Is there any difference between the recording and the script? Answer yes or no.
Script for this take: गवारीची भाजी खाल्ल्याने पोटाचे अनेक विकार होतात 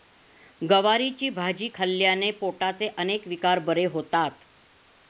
yes